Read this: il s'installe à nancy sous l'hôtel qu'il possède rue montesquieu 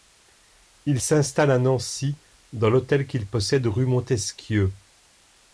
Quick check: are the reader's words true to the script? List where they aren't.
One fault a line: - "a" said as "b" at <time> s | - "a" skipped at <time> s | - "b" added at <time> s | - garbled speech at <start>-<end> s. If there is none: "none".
- "sous" said as "dans" at 2.5 s